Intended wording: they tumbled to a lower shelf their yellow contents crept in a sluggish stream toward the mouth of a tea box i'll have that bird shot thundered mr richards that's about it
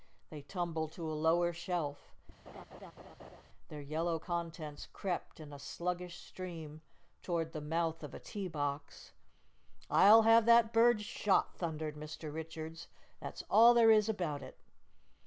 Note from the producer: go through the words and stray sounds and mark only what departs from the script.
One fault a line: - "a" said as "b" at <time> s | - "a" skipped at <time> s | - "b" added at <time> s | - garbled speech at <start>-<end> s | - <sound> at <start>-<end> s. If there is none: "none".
- laugh at 2.5-3.4 s
- "all there is" added at 13.5 s